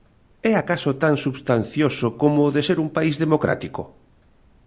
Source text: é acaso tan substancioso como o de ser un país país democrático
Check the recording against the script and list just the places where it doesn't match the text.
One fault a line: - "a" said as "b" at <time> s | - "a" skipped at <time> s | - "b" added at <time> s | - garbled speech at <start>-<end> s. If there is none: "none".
- "país" skipped at 3.2 s